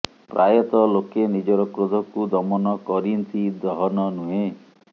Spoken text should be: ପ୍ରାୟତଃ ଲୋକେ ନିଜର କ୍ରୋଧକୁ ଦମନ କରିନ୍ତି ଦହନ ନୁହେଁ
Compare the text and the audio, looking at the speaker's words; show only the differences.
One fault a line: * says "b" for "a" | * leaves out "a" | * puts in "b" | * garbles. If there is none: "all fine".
all fine